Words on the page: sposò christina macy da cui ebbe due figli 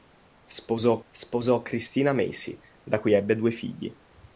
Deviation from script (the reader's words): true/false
true